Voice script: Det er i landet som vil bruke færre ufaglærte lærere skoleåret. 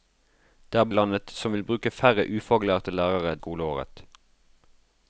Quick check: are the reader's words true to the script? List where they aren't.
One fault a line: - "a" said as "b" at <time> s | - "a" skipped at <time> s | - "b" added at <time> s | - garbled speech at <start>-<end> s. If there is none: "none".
none